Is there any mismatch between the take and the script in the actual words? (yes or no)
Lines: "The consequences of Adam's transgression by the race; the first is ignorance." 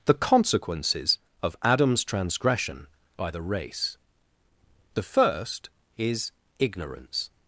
no